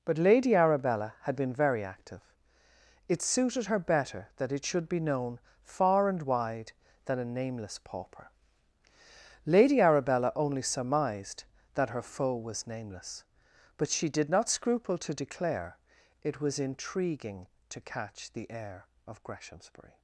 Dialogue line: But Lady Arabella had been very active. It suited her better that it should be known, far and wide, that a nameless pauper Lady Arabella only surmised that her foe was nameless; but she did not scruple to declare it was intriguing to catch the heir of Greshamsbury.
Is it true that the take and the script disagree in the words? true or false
true